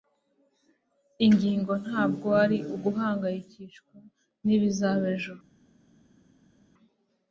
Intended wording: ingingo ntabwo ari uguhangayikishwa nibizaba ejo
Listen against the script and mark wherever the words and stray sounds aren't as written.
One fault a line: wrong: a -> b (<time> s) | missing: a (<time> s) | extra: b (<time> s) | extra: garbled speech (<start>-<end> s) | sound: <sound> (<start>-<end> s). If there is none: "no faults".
no faults